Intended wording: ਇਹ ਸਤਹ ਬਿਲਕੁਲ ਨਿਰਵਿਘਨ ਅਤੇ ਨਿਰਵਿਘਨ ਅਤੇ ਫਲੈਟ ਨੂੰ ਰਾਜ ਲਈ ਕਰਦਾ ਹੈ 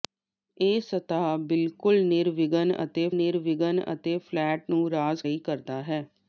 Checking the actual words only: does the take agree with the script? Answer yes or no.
yes